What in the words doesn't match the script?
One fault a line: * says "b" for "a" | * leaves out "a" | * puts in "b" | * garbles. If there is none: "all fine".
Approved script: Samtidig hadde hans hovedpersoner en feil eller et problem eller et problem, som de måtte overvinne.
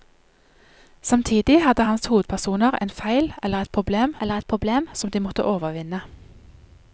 all fine